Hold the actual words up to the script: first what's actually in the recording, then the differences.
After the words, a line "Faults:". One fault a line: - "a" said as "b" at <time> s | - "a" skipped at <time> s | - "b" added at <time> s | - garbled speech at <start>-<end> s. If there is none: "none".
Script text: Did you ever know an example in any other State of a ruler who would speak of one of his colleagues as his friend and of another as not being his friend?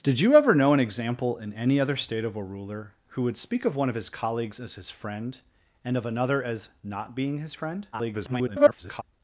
Did you ever know an example in any other State of a ruler who would speak of one of his colleagues as his friend and of another as not being his friend? [garbled]
Faults:
- garbled speech at 7.9-9.0 s